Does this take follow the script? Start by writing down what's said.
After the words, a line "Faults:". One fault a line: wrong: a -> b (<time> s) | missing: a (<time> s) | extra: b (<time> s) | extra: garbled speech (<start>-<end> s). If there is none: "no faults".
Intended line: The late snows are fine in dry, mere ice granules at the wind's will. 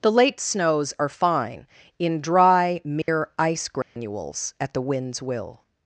The late snows are fine in dry, mere ice granules at the wind's will.
Faults:
no faults